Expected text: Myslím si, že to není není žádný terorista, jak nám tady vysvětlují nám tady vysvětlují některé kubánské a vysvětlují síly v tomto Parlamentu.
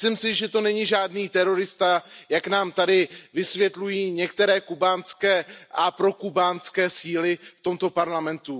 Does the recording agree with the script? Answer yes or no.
no